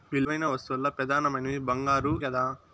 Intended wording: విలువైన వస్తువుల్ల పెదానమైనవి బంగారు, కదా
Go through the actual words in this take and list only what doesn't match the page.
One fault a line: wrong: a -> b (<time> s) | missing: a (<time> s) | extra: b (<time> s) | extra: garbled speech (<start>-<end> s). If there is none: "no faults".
no faults